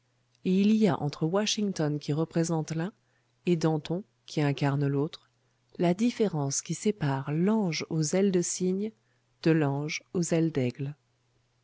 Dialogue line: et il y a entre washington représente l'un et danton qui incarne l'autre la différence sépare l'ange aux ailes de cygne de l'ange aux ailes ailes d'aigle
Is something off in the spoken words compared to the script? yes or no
yes